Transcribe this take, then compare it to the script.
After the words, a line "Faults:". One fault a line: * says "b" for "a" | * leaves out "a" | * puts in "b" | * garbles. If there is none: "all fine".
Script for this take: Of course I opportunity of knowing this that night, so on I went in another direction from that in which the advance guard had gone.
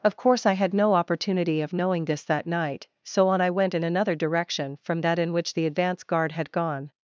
Of course I had no opportunity of knowing this that night, so on I went in another direction from that in which the advance guard had gone.
Faults:
* puts in "had no"